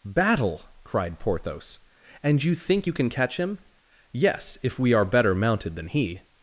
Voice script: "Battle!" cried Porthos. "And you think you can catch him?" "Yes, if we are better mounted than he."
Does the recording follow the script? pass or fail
pass